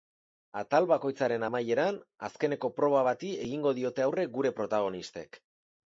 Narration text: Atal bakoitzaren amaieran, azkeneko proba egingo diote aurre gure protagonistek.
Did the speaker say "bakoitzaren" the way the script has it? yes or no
yes